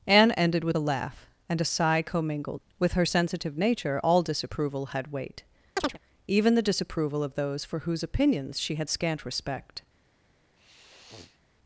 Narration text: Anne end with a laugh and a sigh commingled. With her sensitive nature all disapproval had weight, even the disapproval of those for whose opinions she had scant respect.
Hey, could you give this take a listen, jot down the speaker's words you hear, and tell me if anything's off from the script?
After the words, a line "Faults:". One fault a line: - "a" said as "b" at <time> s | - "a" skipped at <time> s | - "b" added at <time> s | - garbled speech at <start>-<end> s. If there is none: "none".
Anne ended with a laugh and a sigh commingled. With her sensitive nature all disapproval had weight, even the disapproval of those for whose opinions she had scant respect.
Faults:
- "end" said as "ended" at 0.3 s